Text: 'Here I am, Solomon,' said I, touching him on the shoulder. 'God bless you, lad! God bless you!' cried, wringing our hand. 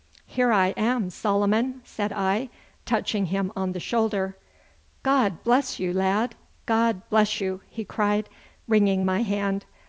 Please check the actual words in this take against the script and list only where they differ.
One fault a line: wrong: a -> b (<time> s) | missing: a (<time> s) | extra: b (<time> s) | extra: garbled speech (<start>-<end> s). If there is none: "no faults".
extra: he (7.7 s)
wrong: our -> my (9.0 s)